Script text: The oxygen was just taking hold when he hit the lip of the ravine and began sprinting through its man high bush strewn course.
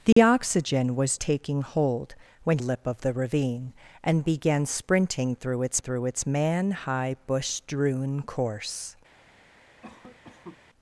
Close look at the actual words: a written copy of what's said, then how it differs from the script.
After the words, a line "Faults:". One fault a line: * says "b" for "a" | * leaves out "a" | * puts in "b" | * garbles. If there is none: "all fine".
The oxygen was taking hold when lip of the ravine and began sprinting through its through its man high bush strewn course.
Faults:
* leaves out "just"
* leaves out "he hit the"
* puts in "through its"